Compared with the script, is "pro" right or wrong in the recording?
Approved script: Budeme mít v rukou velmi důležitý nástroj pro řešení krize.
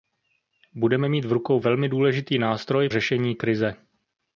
wrong